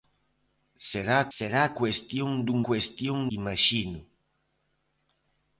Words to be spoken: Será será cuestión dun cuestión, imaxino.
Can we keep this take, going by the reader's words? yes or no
yes